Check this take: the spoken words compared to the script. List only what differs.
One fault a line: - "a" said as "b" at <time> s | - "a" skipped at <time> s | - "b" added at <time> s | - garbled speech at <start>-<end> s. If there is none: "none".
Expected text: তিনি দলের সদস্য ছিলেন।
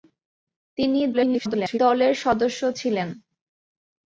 - garbled speech at 1.1-1.8 s